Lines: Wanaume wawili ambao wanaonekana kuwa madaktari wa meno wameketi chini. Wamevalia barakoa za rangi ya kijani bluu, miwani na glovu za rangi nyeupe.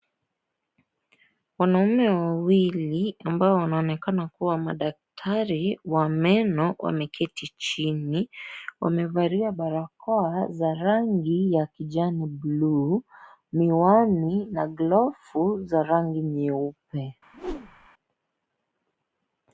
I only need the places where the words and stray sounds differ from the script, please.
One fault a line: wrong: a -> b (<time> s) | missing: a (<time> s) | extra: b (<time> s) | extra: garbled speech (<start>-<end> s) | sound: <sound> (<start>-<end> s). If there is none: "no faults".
sound: whoosh (17.3-17.9 s)